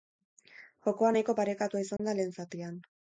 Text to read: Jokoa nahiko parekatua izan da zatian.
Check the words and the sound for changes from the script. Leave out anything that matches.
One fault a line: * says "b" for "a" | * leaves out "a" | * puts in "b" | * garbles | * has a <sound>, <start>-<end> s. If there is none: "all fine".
* has a dropout, 2.0-2.0 s
* puts in "lehen"